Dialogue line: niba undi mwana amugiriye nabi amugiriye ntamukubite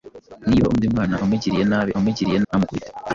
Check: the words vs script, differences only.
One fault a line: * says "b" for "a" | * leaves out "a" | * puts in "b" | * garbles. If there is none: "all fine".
all fine